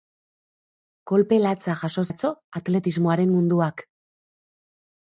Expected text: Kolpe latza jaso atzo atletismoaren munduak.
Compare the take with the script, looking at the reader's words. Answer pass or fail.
pass